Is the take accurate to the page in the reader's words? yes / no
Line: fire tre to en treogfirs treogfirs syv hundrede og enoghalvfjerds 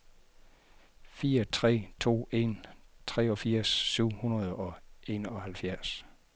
no